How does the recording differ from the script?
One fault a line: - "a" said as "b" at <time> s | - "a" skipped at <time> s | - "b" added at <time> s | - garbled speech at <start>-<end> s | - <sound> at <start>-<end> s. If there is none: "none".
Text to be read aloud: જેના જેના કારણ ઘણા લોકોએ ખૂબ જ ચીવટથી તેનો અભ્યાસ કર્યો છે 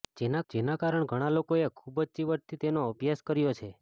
none